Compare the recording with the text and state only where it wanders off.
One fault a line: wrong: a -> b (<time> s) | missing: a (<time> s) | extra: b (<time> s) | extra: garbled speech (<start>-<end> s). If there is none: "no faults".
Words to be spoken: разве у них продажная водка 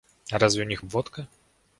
missing: продажная (0.8 s)